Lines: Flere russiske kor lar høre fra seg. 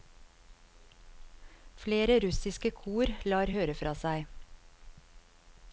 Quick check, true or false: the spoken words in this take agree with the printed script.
true